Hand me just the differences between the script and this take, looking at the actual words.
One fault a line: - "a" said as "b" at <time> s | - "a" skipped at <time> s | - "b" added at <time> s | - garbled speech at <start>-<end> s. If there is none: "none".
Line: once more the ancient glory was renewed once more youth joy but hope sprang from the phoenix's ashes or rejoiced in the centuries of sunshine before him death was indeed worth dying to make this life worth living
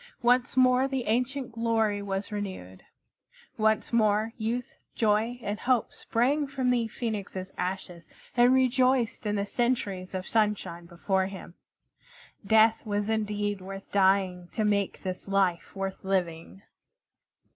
- "but" said as "and" at 5.4 s
- "or" said as "and" at 8.3 s